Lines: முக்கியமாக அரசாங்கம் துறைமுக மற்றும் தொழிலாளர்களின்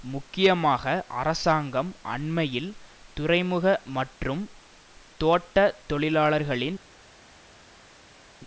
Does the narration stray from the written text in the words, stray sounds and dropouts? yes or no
yes